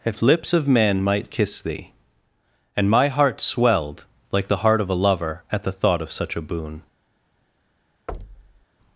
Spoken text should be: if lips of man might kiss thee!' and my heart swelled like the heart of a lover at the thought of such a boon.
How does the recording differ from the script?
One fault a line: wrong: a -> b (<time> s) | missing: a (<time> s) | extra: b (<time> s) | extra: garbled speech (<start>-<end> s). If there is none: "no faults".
no faults